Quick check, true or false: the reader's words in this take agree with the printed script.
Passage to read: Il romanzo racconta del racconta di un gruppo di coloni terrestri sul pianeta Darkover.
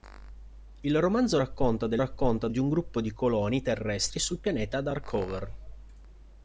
true